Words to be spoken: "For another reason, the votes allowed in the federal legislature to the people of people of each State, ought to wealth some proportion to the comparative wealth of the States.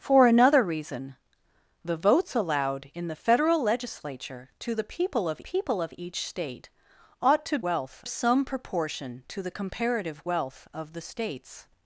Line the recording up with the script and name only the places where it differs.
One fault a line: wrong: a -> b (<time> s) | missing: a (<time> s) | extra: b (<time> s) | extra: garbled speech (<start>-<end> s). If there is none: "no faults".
no faults